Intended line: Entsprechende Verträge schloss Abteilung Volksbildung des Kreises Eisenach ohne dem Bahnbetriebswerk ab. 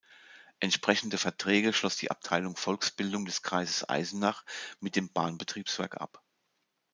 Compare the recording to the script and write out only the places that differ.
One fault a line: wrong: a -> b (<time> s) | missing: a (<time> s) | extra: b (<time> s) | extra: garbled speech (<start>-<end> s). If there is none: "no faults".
extra: die (1.9 s)
wrong: ohne -> mit (4.8 s)